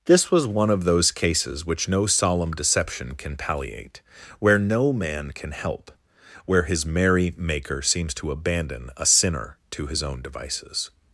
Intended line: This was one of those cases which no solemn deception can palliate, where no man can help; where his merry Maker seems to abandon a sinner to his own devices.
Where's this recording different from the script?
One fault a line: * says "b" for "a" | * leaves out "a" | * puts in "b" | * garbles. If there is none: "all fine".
all fine